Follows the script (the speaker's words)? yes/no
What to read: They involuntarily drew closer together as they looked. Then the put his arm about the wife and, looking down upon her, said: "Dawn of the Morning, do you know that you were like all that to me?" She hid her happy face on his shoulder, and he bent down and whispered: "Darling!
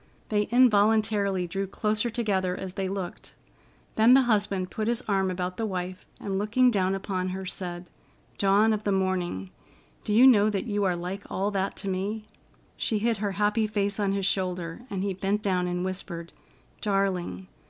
no